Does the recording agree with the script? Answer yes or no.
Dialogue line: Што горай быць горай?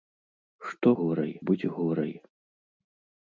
yes